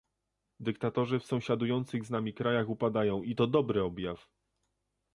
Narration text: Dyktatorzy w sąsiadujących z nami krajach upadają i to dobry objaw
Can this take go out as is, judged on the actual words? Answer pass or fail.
pass